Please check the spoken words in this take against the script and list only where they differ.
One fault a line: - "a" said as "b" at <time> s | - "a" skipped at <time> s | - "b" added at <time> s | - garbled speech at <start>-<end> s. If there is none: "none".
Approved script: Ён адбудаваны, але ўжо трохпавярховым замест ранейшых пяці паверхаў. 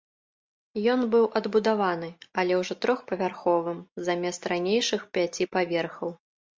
- "быў" added at 1.1 s